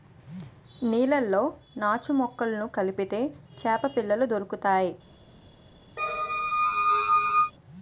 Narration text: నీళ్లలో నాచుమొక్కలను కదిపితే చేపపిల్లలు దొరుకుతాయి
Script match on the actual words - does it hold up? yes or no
yes